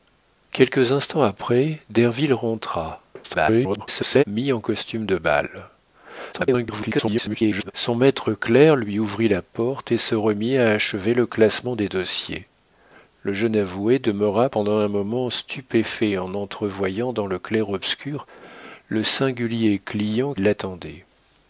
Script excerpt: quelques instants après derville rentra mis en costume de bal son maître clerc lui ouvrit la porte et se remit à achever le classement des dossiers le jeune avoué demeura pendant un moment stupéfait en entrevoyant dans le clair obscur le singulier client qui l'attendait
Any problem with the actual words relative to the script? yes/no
yes